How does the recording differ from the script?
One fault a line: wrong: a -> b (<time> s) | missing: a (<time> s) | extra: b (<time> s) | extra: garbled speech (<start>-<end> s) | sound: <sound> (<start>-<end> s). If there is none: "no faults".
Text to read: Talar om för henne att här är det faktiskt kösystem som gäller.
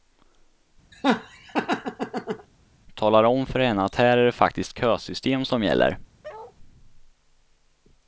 sound: laugh (0.9-2.5 s)
sound: bark (6.2-6.6 s)